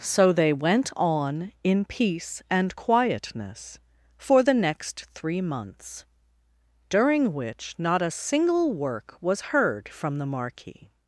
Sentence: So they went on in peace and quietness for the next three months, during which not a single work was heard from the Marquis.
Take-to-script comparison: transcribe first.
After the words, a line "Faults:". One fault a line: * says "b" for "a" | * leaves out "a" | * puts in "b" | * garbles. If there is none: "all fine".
So they went on in peace and quietness for the next three months, during which not a single work was heard from the Marquis.
Faults:
all fine